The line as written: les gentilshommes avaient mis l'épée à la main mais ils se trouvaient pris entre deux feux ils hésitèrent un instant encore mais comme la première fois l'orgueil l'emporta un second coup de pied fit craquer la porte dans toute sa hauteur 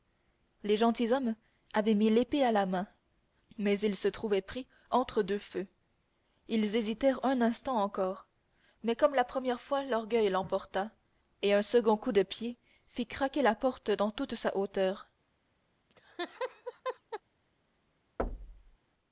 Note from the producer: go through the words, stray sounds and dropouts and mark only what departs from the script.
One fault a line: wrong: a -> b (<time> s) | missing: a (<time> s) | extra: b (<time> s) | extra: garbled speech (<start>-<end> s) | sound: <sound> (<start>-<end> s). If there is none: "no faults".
extra: et (11.4 s)
sound: laugh (15.9-17.2 s)
sound: thud (18.2-18.8 s)